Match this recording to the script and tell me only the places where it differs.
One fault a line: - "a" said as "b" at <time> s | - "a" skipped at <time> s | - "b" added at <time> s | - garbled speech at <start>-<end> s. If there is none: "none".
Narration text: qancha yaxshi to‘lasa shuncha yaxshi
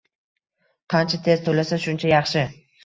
- "yaxshi" said as "tez" at 1.3 s